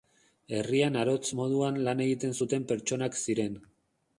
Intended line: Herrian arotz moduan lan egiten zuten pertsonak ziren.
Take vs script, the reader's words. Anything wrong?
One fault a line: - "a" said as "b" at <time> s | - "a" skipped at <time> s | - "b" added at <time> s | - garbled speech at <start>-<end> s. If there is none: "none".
none